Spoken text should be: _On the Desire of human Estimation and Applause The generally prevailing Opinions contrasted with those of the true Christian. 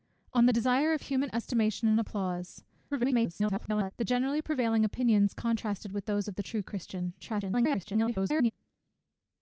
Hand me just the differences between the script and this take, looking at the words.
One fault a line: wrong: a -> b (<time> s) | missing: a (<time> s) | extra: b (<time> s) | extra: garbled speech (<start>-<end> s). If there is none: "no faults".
extra: garbled speech (2.9-3.9 s)
extra: garbled speech (7.2-8.5 s)